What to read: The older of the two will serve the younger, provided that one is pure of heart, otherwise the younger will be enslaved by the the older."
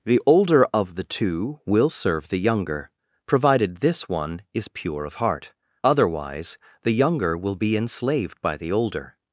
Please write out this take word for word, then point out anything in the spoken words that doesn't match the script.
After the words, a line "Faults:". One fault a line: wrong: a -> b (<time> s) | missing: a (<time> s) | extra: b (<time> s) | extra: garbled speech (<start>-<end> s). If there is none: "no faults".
The older of the two will serve the younger, provided this one is pure of heart, otherwise the younger will be enslaved by the older."
Faults:
wrong: that -> this (3.8 s)
missing: the (8.7 s)